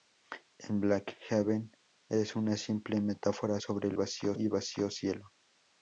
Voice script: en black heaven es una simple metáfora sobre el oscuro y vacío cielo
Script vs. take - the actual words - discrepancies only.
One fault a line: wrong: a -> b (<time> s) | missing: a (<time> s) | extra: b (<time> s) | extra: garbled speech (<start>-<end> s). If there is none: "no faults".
wrong: oscuro -> vacío (3.9 s)